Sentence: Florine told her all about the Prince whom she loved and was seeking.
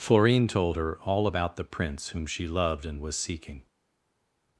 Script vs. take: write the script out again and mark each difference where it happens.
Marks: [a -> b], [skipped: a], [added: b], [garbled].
Florine told her all about the Prince whom she loved and was seeking.